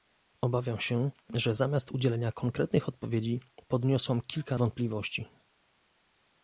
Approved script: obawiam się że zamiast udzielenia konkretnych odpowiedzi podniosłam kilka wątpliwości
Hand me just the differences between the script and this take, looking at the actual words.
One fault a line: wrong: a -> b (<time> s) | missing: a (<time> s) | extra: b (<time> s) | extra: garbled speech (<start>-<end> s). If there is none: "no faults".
no faults